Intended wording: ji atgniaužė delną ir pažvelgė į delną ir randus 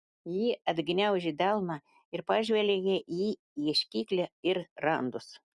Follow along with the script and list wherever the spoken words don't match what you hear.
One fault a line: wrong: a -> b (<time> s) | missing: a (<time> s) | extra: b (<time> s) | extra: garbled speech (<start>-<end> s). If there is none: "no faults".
wrong: delną -> ieškiklį (3.7 s)